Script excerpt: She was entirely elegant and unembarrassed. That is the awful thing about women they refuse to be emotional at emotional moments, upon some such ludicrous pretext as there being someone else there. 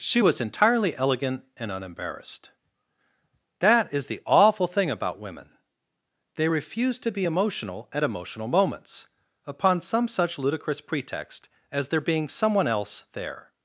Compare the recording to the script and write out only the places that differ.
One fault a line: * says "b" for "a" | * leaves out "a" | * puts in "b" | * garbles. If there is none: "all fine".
all fine